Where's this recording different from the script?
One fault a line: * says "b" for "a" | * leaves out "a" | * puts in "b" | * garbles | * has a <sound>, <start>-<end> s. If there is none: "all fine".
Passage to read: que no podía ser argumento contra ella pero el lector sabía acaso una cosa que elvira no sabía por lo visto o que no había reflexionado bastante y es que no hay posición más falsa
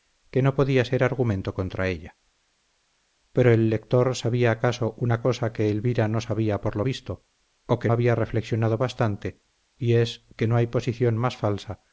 * leaves out "no"